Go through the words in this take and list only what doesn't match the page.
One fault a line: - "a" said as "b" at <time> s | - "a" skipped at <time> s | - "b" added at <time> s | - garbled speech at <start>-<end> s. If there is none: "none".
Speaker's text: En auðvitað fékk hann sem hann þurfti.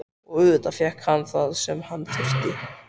- "En" said as "Og" at 0.3 s
- "það" added at 1.3 s